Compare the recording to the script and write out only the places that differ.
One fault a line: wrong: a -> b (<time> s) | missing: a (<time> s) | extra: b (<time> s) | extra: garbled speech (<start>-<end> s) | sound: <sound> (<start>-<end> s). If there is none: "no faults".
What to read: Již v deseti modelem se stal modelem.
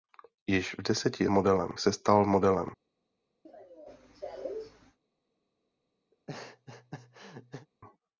sound: cough (3.4-5.0 s)
sound: laugh (6.1-7.7 s)